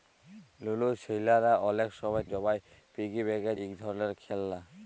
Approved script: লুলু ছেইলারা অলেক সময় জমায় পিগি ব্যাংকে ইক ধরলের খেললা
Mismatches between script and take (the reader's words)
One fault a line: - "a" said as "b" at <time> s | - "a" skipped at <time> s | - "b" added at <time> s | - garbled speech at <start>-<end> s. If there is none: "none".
none